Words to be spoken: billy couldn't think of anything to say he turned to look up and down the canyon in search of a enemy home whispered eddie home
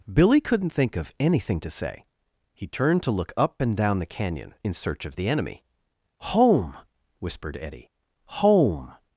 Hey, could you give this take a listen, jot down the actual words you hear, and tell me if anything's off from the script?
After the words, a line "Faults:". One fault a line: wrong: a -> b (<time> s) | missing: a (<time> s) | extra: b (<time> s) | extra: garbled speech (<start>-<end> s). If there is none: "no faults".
billy couldn't think of anything to say he turned to look up and down the canyon in search of the enemy home whispered eddie home
Faults:
wrong: a -> the (5.2 s)